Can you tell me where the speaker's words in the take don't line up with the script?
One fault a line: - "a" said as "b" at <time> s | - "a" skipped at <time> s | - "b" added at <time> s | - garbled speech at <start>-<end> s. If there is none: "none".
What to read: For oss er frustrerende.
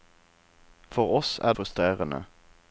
none